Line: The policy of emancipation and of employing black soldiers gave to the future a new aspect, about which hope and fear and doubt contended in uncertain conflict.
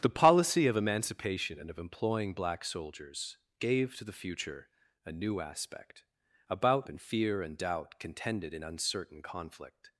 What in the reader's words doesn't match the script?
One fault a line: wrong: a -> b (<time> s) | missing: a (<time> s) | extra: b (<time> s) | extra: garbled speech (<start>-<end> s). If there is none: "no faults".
missing: which hope (6.9 s)